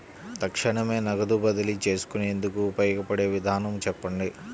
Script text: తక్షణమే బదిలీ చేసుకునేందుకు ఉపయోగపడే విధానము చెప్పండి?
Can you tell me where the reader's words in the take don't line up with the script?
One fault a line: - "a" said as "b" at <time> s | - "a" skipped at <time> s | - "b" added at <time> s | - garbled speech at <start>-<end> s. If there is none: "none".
- "నగదు" added at 1.1 s